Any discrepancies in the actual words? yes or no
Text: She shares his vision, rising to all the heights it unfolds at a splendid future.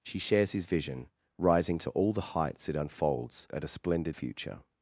no